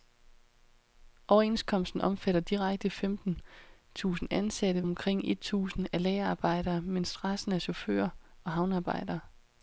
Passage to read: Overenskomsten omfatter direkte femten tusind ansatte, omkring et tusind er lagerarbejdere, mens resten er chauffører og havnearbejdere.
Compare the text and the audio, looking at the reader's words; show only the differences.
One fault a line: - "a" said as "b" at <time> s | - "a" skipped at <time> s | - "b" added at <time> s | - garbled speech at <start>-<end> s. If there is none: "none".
none